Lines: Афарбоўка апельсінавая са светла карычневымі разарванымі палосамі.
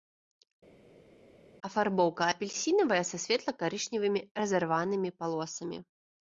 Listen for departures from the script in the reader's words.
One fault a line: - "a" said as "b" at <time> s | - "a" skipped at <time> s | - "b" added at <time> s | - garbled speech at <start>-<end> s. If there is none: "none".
none